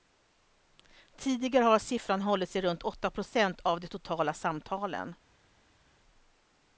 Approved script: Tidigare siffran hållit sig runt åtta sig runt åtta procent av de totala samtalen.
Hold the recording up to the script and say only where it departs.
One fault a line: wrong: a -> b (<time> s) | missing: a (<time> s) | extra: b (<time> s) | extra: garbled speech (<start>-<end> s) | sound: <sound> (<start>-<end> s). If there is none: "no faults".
extra: har (1.6 s)
missing: sig runt åtta (3.1 s)